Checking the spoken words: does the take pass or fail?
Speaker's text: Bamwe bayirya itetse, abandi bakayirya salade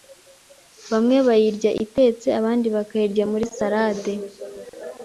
fail